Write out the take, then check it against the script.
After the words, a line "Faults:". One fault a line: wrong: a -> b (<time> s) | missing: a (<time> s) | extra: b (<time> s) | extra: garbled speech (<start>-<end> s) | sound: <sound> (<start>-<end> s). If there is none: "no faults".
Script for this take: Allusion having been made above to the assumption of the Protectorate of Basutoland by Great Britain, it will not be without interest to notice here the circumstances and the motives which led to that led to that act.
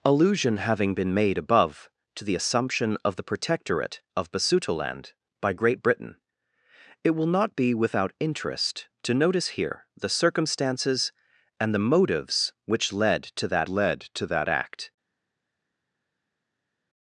Allusion having been made above to the assumption of the Protectorate of Basutoland by Great Britain, it will not be without interest to notice here the circumstances and the motives which led to that led to that act.
Faults:
no faults